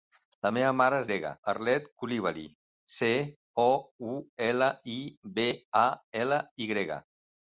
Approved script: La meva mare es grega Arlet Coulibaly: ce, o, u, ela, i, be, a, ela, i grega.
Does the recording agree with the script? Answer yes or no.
yes